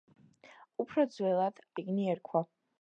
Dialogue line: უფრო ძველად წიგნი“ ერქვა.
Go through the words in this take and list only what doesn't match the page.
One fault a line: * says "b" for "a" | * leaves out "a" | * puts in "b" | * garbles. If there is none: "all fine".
all fine